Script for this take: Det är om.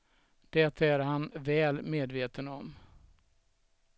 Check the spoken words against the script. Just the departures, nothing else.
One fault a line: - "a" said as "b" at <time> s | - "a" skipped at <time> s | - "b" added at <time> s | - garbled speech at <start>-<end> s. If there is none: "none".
- "han väl medveten" added at 1.0 s